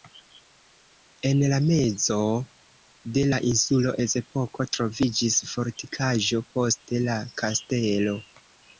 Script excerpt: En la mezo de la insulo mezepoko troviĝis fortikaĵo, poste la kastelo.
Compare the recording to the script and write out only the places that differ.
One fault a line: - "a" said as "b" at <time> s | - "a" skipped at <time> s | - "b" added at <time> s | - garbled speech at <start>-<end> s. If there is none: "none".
none